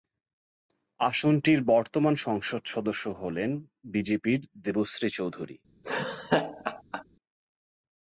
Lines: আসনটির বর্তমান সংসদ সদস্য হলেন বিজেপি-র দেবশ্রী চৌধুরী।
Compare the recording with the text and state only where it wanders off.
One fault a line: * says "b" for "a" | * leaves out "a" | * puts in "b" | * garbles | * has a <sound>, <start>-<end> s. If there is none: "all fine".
* has a laugh, 5.8-7.0 s